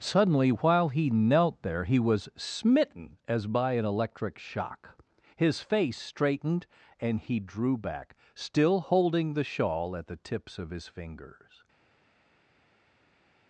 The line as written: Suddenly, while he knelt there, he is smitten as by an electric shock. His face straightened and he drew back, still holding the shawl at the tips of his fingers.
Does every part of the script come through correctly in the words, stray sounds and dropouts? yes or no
no